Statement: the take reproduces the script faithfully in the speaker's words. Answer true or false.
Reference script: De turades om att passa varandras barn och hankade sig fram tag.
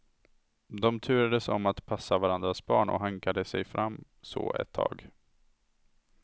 false